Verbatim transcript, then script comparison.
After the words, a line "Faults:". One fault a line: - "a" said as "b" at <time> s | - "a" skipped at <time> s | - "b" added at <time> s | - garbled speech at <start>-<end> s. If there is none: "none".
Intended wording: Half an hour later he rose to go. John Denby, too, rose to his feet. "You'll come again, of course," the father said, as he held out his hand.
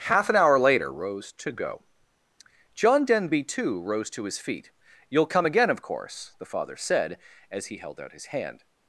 Half an hour later rose to go. John Denby, too, rose to his feet. "You'll come again, of course," the father said, as he held out his hand.
Faults:
- "he" skipped at 0.9 s